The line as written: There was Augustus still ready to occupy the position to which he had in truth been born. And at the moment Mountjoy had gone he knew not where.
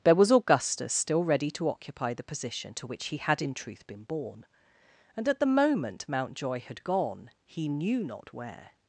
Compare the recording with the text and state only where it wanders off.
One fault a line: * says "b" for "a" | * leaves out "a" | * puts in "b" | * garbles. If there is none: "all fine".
all fine